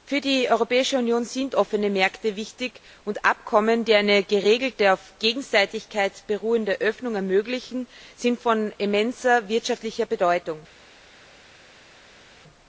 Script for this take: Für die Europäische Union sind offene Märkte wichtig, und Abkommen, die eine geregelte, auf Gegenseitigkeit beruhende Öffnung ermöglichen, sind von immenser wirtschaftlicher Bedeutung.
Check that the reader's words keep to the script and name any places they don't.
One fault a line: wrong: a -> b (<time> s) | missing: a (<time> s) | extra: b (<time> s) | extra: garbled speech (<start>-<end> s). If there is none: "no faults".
no faults